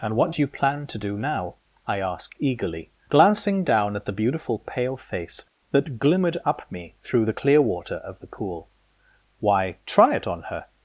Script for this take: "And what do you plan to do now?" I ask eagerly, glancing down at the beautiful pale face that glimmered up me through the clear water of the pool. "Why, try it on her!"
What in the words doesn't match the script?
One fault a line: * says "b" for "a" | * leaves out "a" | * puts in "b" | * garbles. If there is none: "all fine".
all fine